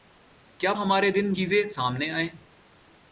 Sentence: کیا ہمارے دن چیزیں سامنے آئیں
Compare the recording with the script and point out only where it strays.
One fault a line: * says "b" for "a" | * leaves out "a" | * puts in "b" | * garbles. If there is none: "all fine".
all fine